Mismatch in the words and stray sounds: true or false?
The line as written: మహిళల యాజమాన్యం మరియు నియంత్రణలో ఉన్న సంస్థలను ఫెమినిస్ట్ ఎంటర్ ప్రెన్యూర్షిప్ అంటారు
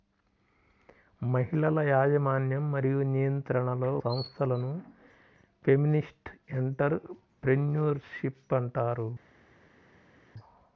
true